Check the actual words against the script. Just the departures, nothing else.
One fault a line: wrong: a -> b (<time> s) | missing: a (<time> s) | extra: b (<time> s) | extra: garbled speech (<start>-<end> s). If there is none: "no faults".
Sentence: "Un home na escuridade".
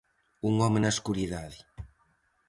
no faults